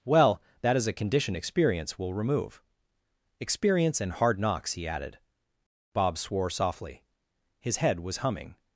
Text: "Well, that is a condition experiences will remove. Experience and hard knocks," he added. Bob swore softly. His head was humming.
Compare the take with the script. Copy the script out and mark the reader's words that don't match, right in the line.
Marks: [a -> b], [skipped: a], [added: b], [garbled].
"Well, that is a condition [experiences -> experience] will remove. Experience and hard knocks," he added. Bob swore softly. His head was humming.